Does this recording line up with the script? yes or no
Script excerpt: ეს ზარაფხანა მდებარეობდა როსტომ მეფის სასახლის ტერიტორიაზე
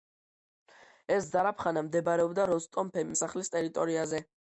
no